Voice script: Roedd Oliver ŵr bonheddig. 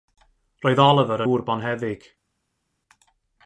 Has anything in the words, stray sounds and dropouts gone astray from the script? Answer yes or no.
no